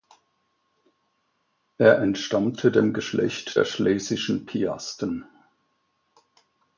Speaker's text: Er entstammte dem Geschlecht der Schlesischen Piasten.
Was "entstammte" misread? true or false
false